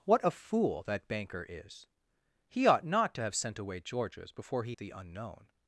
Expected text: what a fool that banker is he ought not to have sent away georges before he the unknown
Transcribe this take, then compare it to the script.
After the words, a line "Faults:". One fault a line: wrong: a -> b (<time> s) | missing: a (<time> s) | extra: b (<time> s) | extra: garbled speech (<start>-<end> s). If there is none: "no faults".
what a fool that banker is he ought not to have sent away georges before he the unknown
Faults:
no faults